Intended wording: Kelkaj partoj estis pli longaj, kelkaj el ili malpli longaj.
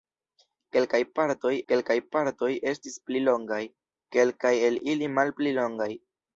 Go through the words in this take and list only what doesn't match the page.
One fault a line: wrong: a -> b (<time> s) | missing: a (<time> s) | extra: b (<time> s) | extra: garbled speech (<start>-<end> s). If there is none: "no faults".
extra: kelkaj partoj (1.7 s)